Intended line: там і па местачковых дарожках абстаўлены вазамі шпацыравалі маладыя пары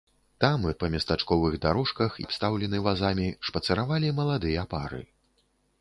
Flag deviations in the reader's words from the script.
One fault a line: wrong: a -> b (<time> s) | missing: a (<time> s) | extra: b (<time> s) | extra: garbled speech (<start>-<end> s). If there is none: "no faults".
no faults